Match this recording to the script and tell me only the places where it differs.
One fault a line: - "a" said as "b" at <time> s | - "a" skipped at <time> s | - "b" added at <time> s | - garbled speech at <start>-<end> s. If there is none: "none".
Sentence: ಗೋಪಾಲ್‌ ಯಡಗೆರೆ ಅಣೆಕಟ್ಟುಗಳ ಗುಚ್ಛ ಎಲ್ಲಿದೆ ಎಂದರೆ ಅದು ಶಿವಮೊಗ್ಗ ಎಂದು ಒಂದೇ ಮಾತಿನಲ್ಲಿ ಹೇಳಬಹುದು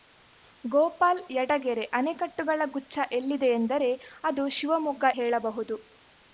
- "ಎಂದು ಒಂದೇ ಮಾತಿನಲ್ಲಿ" skipped at 5.1 s